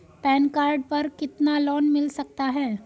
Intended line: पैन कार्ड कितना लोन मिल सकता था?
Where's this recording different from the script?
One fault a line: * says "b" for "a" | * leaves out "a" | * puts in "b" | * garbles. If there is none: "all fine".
* puts in "पर"
* says "है" for "था"